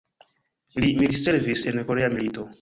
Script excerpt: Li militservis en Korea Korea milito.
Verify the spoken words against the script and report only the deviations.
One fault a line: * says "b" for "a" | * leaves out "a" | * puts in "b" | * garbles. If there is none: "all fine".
* leaves out "Korea"